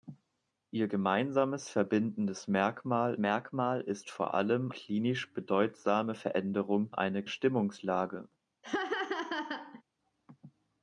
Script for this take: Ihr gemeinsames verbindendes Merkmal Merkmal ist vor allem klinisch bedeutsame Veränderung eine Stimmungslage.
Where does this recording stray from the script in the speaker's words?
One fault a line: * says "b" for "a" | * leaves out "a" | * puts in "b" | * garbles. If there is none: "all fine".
all fine